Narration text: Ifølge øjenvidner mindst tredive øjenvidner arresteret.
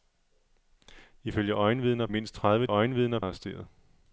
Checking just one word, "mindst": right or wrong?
right